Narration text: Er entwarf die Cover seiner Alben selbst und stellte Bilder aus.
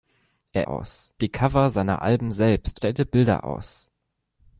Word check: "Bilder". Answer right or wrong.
right